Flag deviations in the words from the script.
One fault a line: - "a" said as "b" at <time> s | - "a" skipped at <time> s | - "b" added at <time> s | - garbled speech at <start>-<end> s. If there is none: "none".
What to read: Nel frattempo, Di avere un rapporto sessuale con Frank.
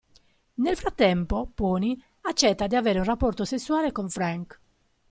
- "Pony accetta" added at 1.5 s